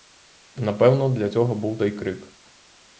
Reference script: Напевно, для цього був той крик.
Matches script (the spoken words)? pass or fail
pass